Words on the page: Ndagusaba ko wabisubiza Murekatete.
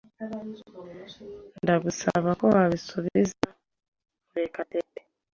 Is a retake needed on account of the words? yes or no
no